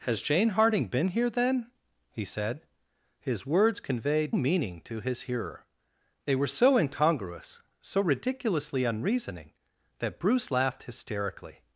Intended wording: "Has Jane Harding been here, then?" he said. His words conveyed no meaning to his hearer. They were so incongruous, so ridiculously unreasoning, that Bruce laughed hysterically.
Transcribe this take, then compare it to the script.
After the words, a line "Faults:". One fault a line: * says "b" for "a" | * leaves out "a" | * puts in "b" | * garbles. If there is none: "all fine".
"Has Jane Harding been here, then?" he said. His words conveyed meaning to his hearer. They were so incongruous, so ridiculously unreasoning, that Bruce laughed hysterically.
Faults:
* leaves out "no"